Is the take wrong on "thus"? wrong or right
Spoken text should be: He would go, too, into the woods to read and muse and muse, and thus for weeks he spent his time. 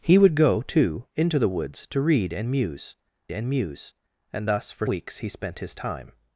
right